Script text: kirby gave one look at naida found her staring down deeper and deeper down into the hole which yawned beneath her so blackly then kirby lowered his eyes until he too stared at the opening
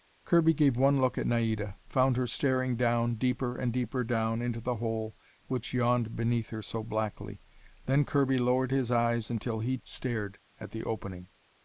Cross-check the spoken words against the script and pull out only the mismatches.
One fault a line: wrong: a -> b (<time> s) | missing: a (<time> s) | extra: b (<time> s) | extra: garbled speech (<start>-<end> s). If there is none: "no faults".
missing: too (9.8 s)